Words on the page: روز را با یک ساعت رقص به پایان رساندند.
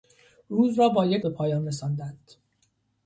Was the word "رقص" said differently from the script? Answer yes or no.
yes